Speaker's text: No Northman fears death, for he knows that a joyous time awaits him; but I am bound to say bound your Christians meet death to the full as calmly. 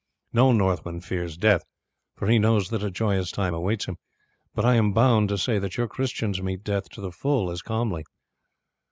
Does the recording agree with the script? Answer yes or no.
no